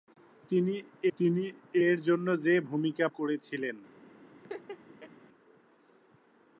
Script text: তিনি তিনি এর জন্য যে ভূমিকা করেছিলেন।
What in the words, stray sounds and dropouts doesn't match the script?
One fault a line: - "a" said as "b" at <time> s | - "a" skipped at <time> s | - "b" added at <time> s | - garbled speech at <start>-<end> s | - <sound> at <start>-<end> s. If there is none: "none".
- laugh at 4.4-5.1 s